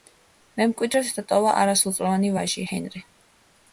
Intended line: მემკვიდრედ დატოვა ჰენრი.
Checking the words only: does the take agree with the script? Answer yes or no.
no